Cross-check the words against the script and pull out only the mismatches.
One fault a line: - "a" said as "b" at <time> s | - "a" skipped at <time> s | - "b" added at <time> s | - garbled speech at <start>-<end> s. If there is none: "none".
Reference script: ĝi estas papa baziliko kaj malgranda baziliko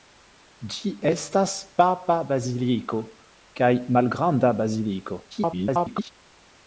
- garbled speech at 5.3-6.1 s